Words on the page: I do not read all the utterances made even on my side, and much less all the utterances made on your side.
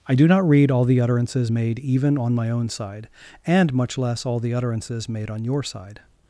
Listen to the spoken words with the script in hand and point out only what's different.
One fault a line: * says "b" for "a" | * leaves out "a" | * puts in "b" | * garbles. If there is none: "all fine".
* puts in "own"